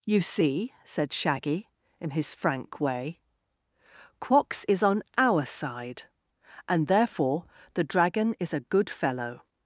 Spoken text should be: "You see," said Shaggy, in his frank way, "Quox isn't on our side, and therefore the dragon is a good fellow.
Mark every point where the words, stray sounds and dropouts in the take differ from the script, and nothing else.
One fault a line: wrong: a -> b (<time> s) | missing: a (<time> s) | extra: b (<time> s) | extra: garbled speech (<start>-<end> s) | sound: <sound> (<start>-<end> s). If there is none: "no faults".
wrong: isn't -> is (4.7 s)